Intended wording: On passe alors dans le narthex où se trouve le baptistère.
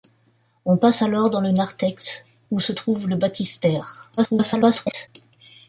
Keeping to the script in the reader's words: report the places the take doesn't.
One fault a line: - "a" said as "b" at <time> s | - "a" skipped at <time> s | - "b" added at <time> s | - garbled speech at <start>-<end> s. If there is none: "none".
- garbled speech at 4.2-5.1 s